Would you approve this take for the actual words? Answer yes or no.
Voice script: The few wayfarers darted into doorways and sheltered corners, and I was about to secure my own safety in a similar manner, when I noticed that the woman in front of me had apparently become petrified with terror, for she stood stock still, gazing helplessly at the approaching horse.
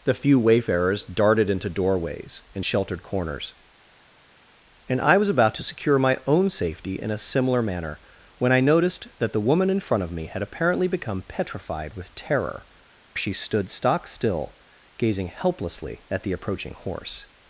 no